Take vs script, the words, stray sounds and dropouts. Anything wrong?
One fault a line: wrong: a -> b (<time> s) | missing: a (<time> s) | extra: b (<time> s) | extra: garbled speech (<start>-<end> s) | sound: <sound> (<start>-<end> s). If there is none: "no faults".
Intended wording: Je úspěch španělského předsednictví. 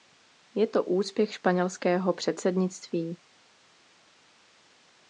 extra: to (0.7 s)